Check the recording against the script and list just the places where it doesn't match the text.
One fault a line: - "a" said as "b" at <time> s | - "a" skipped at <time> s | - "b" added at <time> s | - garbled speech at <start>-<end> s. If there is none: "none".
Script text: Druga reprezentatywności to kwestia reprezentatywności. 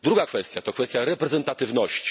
- "reprezentatywności" said as "kwestia" at 0.2 s